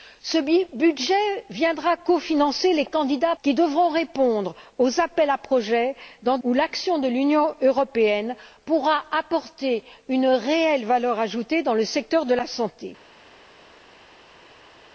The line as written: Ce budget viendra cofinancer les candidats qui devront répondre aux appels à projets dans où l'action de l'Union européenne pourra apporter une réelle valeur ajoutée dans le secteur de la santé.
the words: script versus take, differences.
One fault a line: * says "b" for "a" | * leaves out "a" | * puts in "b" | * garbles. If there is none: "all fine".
all fine